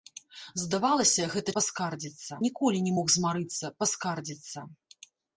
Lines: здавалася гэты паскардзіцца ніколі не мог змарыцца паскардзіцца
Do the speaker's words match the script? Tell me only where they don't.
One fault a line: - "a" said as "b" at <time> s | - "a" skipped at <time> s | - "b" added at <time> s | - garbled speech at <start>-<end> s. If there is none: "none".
none